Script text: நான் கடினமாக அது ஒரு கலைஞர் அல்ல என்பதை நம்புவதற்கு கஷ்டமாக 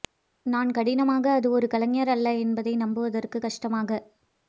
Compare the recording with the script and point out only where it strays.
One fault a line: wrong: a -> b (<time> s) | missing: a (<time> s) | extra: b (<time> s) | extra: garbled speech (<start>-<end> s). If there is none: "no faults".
no faults